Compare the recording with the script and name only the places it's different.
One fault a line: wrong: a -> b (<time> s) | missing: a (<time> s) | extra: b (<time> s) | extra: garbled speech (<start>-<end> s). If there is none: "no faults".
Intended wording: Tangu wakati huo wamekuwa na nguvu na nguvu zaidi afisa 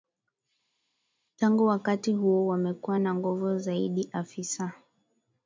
missing: na nguvu (3.6 s)